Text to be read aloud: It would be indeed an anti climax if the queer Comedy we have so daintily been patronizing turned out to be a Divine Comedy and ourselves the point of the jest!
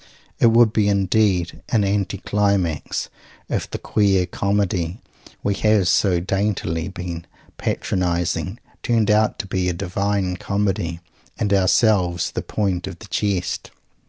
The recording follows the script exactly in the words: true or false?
true